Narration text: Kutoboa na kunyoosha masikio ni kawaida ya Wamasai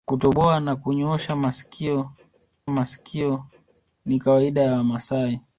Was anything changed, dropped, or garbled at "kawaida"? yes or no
no